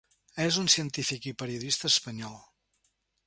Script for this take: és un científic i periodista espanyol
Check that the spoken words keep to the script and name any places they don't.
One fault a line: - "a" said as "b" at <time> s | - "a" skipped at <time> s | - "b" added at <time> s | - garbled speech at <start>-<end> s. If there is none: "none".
none